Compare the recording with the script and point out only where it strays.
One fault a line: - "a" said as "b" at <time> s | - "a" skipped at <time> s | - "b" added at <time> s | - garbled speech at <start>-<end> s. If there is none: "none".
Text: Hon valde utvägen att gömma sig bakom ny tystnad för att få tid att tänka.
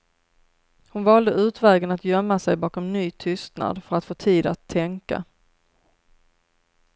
none